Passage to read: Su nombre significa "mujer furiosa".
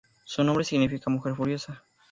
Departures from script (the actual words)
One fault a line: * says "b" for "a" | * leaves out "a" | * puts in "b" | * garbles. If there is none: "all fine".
all fine